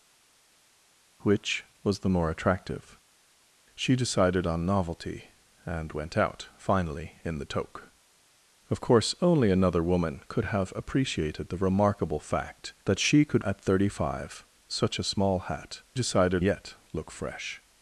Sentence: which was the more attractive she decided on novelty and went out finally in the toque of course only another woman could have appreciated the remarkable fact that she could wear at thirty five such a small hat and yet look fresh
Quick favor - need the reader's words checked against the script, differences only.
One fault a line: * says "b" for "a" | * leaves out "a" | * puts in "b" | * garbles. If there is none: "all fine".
* leaves out "wear"
* says "decided" for "and"